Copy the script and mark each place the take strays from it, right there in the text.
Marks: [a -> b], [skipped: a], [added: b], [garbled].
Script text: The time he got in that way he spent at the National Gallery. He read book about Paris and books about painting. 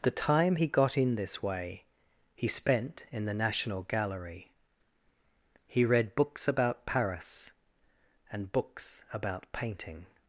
The time he got in [that -> this] way he spent [at -> in] the National Gallery. He read [book -> books] about Paris and books about painting.